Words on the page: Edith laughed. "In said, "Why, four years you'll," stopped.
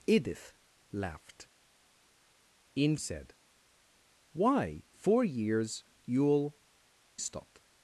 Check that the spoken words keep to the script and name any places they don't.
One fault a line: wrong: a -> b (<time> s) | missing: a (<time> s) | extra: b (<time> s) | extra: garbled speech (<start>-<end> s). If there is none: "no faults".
no faults